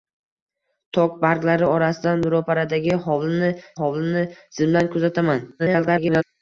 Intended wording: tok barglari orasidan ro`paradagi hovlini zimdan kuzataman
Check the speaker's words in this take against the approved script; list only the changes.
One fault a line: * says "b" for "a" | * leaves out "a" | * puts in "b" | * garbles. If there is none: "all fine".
* puts in "hovlini"
* garbles